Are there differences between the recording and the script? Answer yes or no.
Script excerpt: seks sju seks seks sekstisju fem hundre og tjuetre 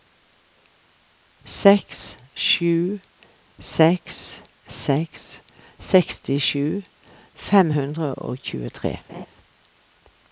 no